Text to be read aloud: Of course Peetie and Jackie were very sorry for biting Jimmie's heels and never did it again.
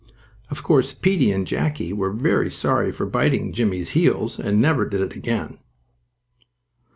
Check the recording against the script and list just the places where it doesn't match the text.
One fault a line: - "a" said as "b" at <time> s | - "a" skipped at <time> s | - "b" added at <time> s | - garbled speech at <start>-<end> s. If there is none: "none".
none